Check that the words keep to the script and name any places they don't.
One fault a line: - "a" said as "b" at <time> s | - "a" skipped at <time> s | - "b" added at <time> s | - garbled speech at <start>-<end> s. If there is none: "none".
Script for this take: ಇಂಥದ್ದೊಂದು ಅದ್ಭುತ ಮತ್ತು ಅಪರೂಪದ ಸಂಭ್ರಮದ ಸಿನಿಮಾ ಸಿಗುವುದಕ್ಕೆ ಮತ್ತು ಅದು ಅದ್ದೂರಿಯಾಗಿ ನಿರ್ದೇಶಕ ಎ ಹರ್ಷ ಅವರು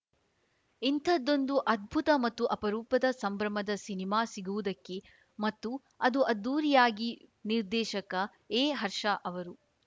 none